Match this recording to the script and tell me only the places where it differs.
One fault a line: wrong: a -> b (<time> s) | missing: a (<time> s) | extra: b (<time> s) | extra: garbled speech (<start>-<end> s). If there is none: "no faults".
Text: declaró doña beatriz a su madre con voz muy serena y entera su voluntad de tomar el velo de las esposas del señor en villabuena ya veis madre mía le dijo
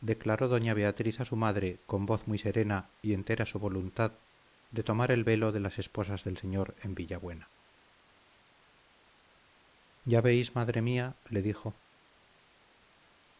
no faults